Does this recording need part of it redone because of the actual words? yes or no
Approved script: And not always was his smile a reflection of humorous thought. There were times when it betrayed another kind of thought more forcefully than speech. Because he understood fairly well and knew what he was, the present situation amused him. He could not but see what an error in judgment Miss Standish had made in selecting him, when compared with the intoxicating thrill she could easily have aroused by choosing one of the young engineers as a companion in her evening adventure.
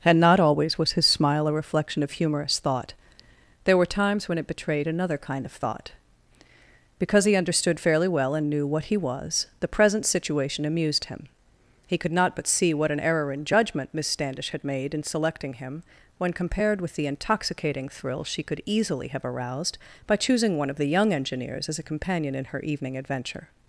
yes